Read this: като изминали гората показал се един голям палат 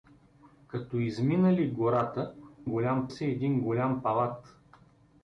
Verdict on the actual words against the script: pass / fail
fail